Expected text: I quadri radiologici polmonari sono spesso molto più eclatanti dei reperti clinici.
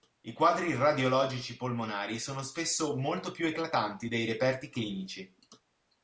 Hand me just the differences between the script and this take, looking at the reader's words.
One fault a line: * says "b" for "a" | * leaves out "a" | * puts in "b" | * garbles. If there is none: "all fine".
all fine